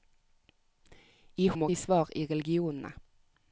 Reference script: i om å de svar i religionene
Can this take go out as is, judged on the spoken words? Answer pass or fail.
pass